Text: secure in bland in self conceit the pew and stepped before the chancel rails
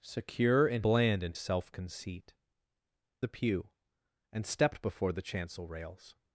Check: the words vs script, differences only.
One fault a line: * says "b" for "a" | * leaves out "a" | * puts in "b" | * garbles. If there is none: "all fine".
all fine